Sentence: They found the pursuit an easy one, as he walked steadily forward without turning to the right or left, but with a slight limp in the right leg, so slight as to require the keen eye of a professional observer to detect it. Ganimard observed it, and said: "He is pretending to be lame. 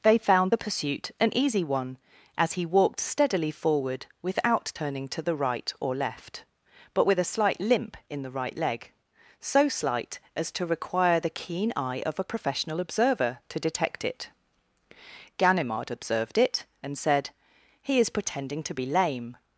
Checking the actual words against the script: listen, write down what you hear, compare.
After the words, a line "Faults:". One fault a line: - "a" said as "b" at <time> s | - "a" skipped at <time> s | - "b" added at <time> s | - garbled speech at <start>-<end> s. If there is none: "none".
They found the pursuit an easy one, as he walked steadily forward without turning to the right or left, but with a slight limp in the right leg, so slight as to require the keen eye of a professional observer to detect it. Ganimard observed it, and said: "He is pretending to be lame.
Faults:
none